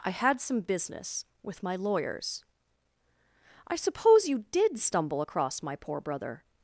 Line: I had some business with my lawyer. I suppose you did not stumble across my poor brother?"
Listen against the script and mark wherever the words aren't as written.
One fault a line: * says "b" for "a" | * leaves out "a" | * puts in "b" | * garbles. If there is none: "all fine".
* says "lawyers" for "lawyer"
* leaves out "not"